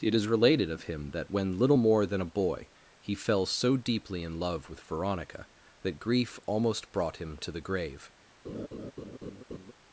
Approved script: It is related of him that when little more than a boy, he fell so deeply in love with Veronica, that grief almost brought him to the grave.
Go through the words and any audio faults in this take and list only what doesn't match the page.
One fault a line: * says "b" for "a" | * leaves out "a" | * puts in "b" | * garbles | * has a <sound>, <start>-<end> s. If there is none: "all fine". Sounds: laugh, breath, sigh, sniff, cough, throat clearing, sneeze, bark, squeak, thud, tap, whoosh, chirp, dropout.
* has a laugh, 8.4-9.7 s